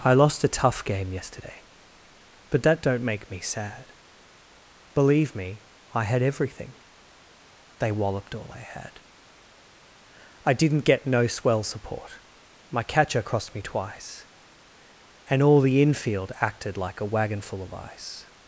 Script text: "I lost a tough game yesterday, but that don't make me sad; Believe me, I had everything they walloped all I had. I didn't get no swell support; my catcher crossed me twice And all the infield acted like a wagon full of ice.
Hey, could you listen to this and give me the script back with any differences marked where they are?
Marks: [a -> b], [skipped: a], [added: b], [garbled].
"I lost a tough game yesterday, but that don't make me sad; Believe me, I had everything they walloped all I had. I didn't get no swell support; my catcher crossed me twice And all the infield acted like a wagon full of ice.